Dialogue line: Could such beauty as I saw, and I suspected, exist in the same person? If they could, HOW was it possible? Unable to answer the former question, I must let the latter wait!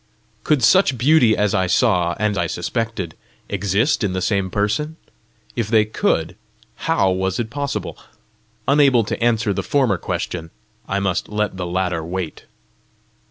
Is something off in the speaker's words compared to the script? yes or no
no